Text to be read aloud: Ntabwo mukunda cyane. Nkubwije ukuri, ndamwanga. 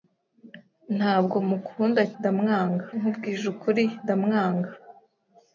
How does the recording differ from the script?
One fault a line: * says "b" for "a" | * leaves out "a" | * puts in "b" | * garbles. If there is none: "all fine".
* says "ndamwanga" for "cyane"